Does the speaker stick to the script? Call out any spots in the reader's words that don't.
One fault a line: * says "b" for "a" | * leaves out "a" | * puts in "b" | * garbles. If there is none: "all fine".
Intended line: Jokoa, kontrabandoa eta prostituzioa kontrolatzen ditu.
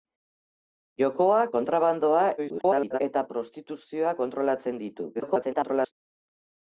* garbles
* garbles